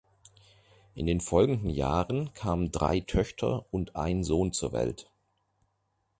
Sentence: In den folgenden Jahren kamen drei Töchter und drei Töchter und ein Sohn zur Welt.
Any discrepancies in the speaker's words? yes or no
yes